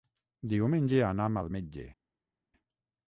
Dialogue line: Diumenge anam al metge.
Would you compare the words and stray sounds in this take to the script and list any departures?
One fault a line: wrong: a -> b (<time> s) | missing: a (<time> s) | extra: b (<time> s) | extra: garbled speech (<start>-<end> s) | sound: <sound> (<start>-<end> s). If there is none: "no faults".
no faults